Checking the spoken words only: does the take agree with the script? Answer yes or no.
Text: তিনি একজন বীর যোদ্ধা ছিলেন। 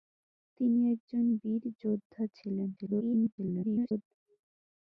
no